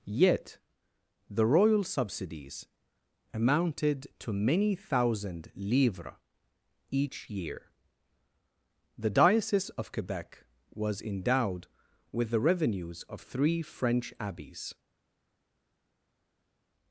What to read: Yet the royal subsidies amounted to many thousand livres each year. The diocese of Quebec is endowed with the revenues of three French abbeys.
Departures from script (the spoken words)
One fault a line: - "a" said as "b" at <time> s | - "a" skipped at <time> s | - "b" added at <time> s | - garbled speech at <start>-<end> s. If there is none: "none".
- "is" said as "was" at 10.7 s